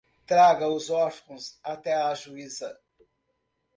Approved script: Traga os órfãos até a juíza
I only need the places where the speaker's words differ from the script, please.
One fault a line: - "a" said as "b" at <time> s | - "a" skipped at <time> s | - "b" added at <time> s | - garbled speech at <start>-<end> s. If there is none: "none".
none